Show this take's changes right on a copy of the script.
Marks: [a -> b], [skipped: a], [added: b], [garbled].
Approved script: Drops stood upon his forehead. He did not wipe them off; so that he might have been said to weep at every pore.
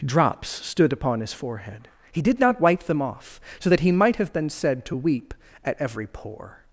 Drops stood upon his forehead. He did not wipe them off; so that he might have been said to weep at every pore.